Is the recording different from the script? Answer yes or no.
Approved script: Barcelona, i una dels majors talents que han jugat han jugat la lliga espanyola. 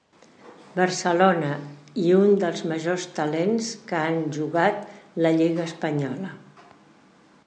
yes